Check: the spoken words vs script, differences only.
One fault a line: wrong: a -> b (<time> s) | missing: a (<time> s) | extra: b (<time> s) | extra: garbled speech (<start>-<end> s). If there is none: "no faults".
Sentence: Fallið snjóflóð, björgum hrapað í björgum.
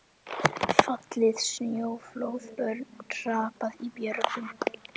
wrong: björgum -> börn (2.6 s)